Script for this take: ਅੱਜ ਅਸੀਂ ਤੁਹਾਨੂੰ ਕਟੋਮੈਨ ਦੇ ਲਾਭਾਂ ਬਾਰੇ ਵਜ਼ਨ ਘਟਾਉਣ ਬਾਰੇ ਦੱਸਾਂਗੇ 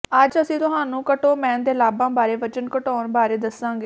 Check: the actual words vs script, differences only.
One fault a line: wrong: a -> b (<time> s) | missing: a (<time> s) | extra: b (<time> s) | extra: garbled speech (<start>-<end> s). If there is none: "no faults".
no faults